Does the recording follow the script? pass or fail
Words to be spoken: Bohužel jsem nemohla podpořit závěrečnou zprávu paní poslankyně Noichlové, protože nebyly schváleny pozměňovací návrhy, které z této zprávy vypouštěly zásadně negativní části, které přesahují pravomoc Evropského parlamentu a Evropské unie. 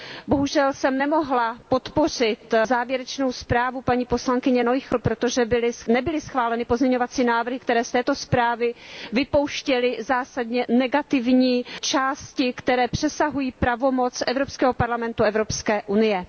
pass